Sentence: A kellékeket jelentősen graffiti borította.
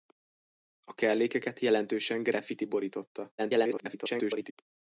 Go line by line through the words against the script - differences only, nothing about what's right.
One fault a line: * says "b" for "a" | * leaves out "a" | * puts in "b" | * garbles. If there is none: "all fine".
* garbles